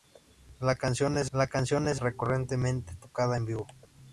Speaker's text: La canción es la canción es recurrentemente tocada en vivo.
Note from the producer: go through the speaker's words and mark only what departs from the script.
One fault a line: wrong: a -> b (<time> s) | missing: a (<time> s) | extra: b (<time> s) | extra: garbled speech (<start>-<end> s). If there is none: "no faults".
no faults